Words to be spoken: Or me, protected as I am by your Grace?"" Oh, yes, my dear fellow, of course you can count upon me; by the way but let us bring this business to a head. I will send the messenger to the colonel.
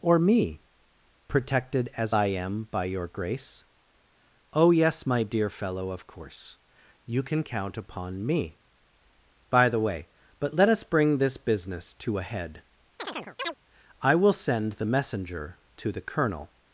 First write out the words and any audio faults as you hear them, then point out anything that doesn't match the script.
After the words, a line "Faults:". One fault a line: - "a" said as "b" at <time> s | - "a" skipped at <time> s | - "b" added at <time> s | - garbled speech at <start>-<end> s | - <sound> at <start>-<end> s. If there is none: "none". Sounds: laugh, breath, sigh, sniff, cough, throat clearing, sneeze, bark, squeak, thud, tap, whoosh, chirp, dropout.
Or me, protected as I am by your Grace?"" Oh, yes, my dear fellow, of course you can count upon me; by the way but let us bring this business to a head. I will send the messenger to the colonel.
Faults:
- chirp at 13.0-13.6 s